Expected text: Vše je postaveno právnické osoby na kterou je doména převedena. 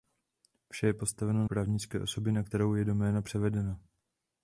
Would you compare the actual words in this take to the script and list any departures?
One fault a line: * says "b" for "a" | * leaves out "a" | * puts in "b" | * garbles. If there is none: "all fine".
all fine